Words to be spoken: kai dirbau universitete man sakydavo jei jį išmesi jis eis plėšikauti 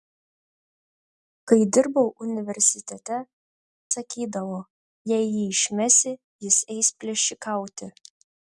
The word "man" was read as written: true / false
false